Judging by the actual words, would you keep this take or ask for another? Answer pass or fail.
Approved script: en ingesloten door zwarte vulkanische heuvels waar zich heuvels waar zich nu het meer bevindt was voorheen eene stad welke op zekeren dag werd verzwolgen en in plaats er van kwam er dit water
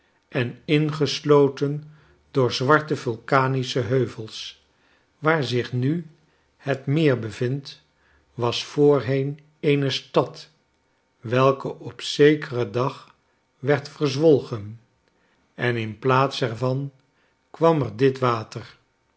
fail